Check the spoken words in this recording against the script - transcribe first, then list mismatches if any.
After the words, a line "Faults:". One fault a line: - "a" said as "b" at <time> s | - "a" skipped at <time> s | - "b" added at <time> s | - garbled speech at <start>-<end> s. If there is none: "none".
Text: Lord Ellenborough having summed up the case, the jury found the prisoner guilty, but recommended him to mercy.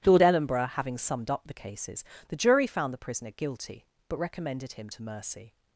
Lord Ellenborough having summed up the cases, the jury found the prisoner guilty, but recommended him to mercy.
Faults:
- "case" said as "cases" at 1.5 s